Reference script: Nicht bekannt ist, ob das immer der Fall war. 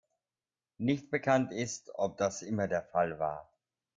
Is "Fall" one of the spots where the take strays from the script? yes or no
no